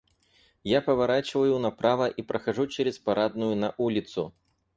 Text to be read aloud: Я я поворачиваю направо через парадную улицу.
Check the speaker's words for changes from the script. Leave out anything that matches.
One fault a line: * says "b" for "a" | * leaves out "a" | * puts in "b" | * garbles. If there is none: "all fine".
* leaves out "я"
* puts in "и прохожу"
* puts in "на"